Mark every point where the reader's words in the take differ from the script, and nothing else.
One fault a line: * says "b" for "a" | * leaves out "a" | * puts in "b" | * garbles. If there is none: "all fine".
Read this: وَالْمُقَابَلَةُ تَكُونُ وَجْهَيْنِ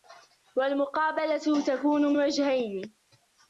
all fine